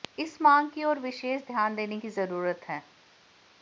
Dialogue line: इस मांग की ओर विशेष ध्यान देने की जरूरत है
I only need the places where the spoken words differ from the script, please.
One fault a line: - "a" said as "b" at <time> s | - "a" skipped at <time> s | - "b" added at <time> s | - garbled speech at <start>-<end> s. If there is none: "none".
none